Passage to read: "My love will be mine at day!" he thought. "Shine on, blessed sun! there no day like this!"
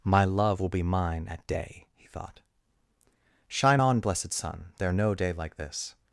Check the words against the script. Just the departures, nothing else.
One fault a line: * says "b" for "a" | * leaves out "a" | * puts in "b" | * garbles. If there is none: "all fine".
all fine